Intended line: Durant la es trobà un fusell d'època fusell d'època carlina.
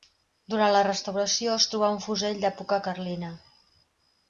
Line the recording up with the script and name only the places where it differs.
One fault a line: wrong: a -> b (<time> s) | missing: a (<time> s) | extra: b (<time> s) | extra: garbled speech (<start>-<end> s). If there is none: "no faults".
extra: restauració (0.9 s)
missing: fusell d'època (2.8 s)